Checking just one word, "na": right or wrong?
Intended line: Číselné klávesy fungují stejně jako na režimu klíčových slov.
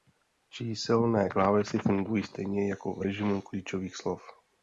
wrong